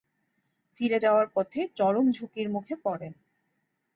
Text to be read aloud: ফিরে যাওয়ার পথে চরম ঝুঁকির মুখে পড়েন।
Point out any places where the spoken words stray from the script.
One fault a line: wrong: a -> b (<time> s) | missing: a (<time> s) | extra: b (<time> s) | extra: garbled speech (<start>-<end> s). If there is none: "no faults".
no faults